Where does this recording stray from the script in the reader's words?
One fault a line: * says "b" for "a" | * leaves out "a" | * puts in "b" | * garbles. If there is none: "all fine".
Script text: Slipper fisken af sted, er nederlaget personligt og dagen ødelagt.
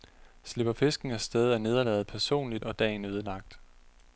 all fine